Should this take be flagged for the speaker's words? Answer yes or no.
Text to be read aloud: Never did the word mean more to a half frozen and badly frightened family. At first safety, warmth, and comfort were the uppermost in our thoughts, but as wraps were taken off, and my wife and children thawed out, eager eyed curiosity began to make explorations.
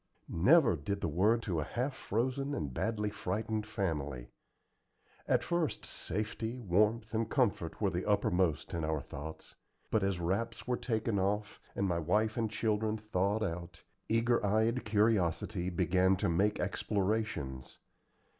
yes